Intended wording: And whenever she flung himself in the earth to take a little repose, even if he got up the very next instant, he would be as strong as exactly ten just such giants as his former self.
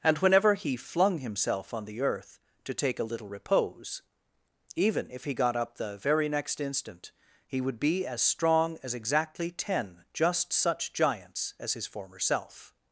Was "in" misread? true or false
true